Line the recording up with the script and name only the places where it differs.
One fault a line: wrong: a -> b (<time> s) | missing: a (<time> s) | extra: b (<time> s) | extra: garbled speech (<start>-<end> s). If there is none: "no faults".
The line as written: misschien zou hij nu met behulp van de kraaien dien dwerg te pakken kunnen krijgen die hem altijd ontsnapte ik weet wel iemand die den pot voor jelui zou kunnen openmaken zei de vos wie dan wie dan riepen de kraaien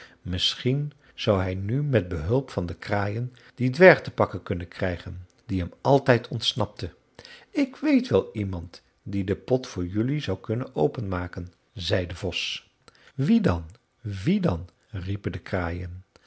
no faults